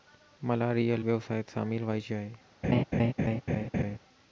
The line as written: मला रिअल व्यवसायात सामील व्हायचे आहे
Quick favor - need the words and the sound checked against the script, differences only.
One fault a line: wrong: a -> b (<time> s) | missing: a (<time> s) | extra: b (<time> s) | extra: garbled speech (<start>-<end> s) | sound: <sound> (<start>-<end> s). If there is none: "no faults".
sound: laugh (2.6-4.0 s)